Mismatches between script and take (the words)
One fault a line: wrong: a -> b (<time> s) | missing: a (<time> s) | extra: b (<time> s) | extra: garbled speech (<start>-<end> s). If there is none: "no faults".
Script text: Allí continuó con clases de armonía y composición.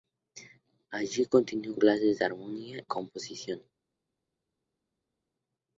missing: con (1.8 s)
missing: y (2.8 s)